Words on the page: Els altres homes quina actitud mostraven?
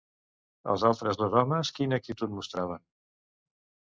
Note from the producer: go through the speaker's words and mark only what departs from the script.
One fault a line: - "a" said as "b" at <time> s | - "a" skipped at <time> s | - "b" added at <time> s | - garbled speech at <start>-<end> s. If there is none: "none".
- "dos" added at 1.2 s